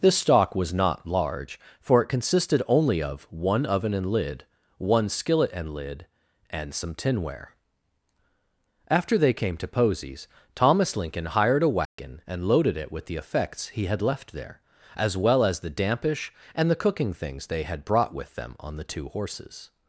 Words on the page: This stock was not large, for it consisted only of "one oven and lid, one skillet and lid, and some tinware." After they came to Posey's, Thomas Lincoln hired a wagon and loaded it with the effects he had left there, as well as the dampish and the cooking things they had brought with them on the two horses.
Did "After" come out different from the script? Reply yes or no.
no